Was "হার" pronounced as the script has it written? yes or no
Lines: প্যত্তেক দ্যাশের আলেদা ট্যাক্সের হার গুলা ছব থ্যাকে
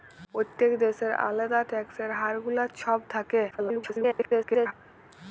yes